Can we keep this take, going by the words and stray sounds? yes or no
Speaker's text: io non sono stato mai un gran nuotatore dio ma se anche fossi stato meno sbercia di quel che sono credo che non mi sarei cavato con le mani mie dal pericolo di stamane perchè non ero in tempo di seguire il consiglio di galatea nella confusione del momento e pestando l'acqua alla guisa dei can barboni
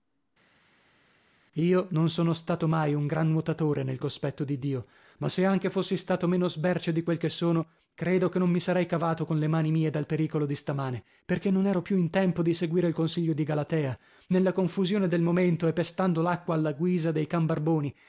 no